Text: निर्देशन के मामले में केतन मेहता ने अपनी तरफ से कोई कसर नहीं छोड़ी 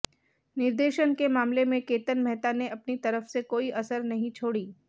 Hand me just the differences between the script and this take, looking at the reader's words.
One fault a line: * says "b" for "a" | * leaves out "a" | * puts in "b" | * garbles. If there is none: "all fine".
all fine